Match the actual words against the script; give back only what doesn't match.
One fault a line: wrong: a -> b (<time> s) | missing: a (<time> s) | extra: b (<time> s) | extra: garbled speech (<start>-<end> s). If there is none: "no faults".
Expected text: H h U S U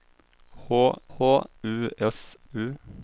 no faults